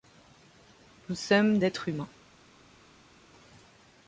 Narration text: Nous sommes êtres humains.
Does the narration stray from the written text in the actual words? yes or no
no